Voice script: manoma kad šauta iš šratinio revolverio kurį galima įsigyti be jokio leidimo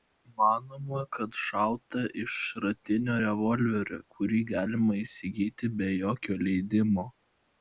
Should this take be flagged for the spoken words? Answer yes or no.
no